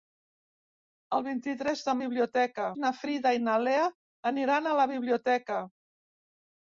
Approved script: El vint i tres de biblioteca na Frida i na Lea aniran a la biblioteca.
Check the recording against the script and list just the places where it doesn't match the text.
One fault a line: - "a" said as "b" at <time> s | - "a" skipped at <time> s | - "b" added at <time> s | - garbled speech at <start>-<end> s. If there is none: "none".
none